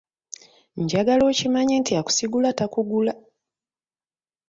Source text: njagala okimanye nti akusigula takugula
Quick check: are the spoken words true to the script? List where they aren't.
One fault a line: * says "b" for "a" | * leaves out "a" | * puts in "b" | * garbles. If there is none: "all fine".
all fine